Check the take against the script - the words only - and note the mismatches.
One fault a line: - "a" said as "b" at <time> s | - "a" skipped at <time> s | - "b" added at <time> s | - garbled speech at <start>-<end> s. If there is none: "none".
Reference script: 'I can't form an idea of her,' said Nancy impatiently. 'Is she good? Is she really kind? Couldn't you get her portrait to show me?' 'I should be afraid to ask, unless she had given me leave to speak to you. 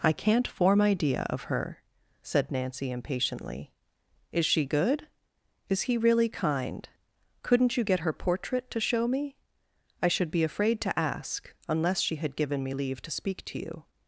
- "an" skipped at 0.8 s
- "she" said as "he" at 5.8 s